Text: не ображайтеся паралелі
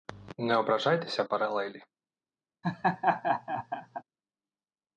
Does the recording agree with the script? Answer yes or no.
yes